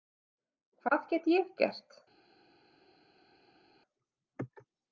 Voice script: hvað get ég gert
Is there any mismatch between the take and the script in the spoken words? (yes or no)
no